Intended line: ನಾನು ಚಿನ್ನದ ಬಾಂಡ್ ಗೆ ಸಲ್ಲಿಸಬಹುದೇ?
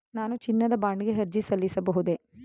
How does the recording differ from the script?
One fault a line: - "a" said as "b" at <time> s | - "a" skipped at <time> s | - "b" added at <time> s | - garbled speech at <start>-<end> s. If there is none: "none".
- "ಅರ್ಜಿ" added at 1.2 s